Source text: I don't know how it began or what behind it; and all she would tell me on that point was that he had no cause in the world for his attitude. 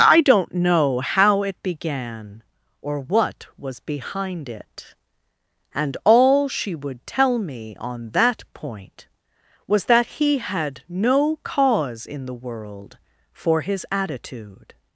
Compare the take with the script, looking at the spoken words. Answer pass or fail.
fail